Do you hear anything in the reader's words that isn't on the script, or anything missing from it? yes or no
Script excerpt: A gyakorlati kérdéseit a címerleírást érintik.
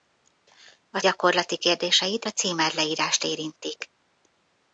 no